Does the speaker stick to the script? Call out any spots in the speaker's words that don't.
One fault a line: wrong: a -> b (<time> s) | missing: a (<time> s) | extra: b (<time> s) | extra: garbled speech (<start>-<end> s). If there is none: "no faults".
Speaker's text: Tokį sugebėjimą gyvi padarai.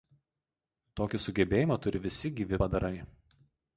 extra: turi visi (1.9 s)